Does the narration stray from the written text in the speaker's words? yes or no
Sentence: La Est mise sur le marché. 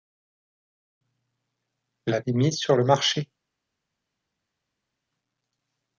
no